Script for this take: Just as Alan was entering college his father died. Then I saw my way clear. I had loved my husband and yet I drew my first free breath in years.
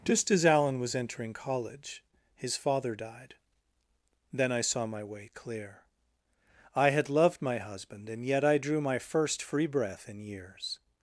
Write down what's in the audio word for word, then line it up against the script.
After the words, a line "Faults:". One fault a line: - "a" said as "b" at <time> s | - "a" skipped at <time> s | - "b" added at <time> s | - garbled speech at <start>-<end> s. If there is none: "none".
Just as Alan was entering college his father died. Then I saw my way clear. I had loved my husband and yet I drew my first free breath in years.
Faults:
none